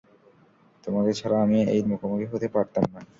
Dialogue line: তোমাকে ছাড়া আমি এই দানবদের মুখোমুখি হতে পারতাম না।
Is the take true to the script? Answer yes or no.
no